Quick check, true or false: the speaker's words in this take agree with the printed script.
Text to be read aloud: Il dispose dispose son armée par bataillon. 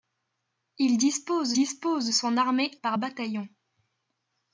true